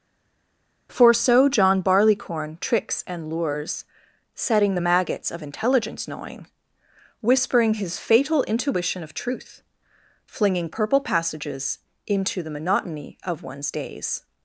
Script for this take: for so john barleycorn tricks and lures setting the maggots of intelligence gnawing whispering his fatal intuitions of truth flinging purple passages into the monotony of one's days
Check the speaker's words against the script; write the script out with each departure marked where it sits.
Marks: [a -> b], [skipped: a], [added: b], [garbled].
for so john barleycorn tricks and lures setting the maggots of intelligence gnawing whispering his fatal [intuitions -> intuition] of truth flinging purple passages into the monotony of one's days